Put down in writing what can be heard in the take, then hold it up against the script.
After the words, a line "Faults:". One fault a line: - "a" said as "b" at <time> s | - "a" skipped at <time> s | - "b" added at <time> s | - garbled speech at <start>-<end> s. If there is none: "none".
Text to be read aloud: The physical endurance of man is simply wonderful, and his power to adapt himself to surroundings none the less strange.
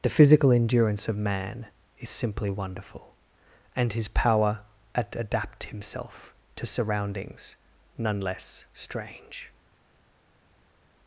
The physical endurance of man is simply wonderful, and his power at adapt himself to surroundings none less strange.
Faults:
- "to" said as "at" at 5.0 s
- "the" skipped at 8.2 s